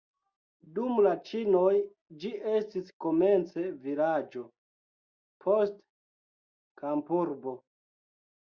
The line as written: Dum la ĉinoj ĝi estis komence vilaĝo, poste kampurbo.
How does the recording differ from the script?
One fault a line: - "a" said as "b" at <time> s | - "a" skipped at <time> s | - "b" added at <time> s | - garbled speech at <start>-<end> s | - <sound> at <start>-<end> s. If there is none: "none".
none